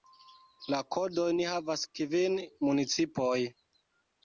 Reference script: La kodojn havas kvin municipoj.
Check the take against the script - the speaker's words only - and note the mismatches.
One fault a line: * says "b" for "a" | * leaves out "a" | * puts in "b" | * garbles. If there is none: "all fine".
all fine